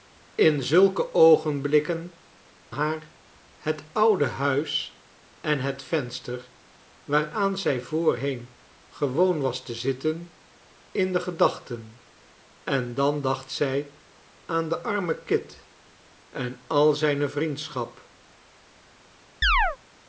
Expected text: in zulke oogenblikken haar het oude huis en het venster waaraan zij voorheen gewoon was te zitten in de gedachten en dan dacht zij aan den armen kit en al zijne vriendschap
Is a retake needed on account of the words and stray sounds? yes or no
yes